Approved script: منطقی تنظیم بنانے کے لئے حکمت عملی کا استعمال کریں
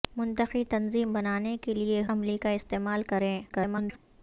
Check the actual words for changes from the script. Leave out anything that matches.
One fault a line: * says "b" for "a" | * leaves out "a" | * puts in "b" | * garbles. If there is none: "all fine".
* leaves out "حکمت"
* garbles